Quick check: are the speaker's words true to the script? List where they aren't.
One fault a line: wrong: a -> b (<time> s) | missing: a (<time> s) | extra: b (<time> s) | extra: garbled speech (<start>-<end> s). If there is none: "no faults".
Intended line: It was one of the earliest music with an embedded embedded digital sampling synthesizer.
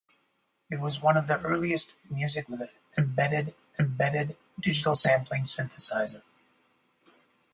no faults